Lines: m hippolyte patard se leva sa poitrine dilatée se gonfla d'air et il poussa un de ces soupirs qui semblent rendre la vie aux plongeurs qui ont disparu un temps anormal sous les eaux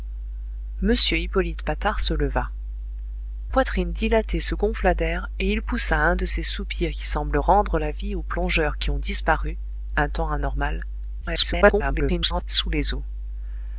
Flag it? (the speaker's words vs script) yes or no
yes